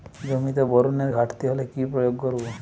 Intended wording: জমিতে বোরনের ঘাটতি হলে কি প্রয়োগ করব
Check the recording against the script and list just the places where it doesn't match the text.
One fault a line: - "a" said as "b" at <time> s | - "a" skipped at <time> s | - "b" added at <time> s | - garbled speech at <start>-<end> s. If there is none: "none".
none